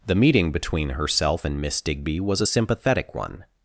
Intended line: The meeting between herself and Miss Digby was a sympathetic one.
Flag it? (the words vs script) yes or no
no